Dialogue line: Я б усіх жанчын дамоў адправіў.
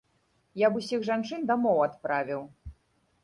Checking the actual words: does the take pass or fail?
pass